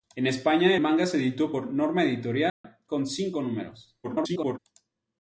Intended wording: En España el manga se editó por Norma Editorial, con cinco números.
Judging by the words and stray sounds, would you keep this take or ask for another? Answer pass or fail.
fail